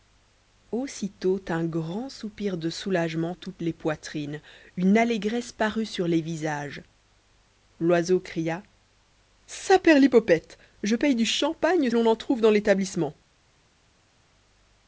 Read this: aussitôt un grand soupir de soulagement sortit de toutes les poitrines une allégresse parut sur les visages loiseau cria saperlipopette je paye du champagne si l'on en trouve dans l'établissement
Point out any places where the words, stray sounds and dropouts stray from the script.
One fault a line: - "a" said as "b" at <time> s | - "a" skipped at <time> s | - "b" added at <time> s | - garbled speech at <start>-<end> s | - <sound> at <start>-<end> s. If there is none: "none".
- "sortit de" skipped at 3.4 s
- "si" skipped at 11.9 s